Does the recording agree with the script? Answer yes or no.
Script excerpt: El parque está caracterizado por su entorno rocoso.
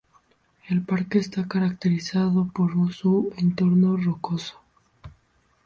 yes